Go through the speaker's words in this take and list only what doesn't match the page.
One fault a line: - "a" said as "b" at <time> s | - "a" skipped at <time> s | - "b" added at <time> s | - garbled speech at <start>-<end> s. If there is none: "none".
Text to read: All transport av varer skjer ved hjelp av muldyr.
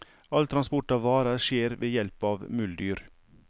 none